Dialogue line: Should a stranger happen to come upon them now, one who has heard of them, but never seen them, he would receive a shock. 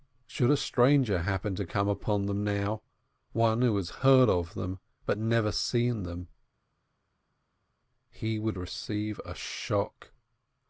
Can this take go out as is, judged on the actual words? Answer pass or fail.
pass